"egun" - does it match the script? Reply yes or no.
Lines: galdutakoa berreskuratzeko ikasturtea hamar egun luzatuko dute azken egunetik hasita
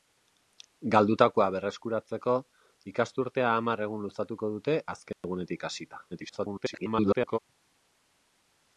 yes